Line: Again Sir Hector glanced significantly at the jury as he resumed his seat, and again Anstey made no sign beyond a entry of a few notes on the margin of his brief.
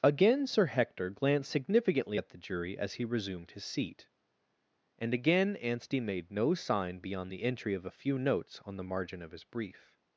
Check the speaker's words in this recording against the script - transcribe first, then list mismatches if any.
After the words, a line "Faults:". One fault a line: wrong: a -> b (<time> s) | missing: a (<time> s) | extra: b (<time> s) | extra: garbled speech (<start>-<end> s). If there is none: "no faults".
Again Sir Hector glanced significantly at the jury as he resumed his seat, and again Anstey made no sign beyond the entry of a few notes on the margin of his brief.
Faults:
wrong: a -> the (7.3 s)